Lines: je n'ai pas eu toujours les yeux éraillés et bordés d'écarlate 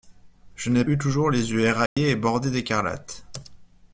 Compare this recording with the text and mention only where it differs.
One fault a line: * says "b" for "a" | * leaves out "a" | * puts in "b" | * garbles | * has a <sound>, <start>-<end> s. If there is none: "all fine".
* leaves out "pas"
* has a dropout, 1.9-2.0 s